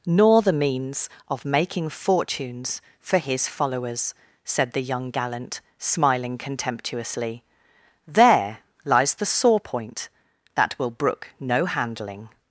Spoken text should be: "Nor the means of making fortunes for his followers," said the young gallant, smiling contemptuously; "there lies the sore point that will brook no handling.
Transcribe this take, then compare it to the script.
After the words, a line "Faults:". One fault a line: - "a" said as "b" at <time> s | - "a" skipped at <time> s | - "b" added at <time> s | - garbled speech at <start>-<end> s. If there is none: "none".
"Nor the means of making fortunes for his followers," said the young gallant, smiling contemptuously; "there lies the sore point that will brook no handling.
Faults:
none